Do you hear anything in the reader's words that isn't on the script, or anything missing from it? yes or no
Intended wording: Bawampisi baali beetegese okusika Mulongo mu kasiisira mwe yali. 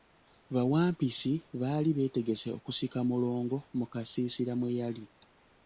no